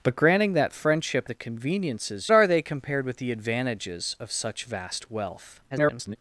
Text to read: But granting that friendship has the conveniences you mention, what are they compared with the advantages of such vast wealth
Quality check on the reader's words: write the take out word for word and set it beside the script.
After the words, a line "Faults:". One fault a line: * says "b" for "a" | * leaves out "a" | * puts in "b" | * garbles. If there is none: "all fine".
But granting that friendship the conveniences are they compared with the advantages of such vast wealth [garbled]
Faults:
* leaves out "has"
* leaves out "you mention what"
* garbles